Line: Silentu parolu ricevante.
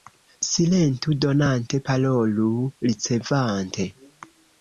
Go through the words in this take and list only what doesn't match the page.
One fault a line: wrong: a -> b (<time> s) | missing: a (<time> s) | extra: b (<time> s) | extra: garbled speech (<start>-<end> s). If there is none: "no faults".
extra: donante (1.2 s)